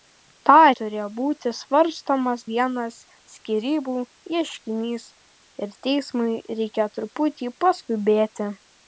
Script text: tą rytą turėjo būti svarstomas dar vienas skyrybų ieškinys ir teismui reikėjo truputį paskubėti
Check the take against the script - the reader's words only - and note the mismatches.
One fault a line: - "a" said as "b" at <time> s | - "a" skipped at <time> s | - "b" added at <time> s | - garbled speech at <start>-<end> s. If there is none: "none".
- "rytą" skipped at 0.5 s
- "dar" skipped at 2.4 s